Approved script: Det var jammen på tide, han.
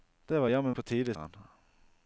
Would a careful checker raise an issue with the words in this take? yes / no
no